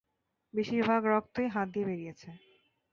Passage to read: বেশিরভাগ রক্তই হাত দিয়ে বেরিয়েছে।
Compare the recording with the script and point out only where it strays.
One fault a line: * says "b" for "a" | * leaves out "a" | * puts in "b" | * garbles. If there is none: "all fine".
all fine